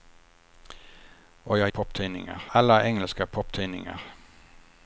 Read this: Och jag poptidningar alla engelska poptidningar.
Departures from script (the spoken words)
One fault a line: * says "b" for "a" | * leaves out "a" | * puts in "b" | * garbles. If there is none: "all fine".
all fine